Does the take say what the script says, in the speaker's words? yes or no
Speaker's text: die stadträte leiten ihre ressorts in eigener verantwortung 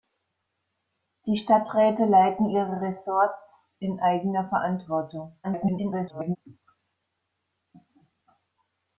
no